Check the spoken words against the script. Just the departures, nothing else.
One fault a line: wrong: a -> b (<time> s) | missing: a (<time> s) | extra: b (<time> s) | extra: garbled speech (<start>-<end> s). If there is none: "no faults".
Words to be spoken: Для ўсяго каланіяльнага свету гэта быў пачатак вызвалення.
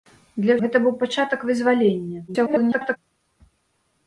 missing: ўсяго каланіяльнага свету (0.5 s)
extra: garbled speech (2.3-3.0 s)